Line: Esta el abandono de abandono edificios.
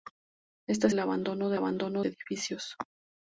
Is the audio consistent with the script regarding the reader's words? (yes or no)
yes